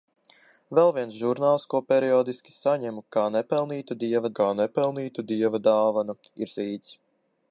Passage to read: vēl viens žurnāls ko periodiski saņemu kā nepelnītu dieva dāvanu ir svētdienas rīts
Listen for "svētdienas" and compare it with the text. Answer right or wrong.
wrong